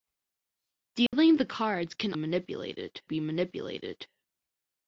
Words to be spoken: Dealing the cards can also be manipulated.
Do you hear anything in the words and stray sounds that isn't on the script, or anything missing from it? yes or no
yes